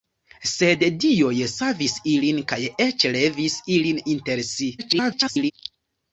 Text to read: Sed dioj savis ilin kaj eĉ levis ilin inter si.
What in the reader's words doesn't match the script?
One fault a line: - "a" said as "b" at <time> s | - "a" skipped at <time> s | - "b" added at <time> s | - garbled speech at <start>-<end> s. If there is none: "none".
- garbled speech at 4.8-5.5 s